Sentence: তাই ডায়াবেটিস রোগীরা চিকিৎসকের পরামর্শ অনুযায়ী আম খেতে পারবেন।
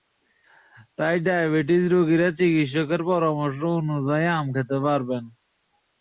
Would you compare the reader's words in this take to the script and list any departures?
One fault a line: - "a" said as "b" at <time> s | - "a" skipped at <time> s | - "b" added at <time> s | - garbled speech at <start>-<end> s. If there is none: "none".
none